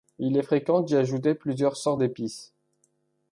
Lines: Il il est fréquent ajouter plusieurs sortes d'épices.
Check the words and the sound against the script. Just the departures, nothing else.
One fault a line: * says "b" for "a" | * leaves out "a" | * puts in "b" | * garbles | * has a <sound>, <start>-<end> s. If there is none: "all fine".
* leaves out "il"
* puts in "d'y"